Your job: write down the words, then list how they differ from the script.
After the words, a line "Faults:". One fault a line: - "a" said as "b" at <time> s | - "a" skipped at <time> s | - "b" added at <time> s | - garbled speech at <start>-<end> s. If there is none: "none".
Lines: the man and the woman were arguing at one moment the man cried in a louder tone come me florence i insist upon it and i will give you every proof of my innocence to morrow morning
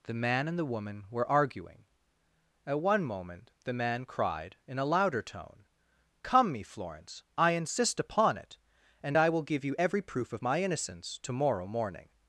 the man and the woman were arguing at one moment the man cried in a louder tone come me florence i insist upon it and i will give you every proof of my innocence to morrow morning
Faults:
none